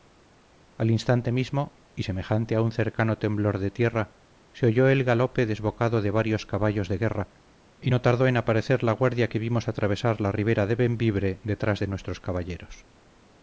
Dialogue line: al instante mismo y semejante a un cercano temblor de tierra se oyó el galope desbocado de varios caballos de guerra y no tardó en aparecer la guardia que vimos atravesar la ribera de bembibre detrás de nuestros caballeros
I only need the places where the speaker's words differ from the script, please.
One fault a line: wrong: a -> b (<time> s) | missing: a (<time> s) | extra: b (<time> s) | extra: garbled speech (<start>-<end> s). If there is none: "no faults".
no faults